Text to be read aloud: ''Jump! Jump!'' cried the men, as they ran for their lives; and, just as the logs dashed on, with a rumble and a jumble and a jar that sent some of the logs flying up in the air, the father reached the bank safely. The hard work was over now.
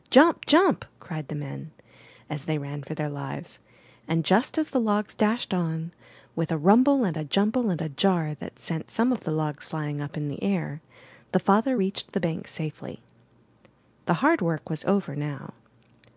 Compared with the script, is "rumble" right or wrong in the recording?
right